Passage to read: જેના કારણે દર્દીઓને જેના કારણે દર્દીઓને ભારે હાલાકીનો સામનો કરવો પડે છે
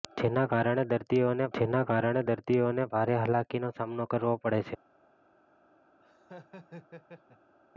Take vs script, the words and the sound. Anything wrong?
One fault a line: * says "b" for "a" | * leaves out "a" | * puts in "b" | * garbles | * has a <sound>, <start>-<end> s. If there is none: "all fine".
* has a laugh, 6.0-7.5 s